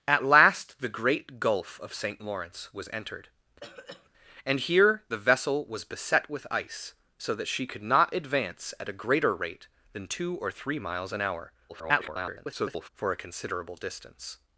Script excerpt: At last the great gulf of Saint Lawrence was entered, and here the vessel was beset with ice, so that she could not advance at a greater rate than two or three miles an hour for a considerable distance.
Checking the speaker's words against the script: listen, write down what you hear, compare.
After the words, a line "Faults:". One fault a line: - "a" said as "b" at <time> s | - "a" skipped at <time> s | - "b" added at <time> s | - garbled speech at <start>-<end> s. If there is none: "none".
At last the great gulf of Saint Lawrence was entered, and here the vessel was beset with ice, so that she could not advance at a greater rate than two or three miles an hour [garbled] for a considerable distance.
Faults:
- garbled speech at 11.7-12.9 s